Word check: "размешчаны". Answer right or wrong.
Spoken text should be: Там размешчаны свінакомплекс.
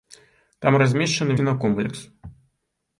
right